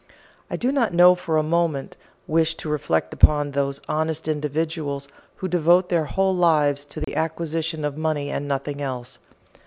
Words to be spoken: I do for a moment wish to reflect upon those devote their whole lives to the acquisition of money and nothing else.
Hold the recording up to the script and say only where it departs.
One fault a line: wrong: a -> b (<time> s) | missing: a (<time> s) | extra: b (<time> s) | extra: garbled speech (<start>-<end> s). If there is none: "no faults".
extra: not (0.7 s)
extra: honest individuals who (3.9 s)